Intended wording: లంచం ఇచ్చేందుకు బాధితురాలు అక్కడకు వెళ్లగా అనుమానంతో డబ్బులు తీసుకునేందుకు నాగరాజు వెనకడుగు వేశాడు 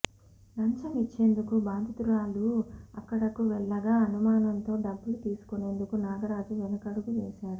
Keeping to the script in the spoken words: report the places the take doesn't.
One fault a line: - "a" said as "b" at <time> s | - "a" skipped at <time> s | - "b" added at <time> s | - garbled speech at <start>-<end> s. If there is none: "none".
none